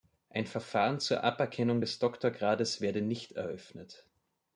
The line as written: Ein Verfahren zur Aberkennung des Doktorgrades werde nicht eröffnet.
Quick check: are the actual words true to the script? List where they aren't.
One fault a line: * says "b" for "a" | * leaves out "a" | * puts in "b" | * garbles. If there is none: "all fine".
all fine